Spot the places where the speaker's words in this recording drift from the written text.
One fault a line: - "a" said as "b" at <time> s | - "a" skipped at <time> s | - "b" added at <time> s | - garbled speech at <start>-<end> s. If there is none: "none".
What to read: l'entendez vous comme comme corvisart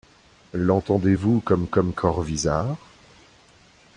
none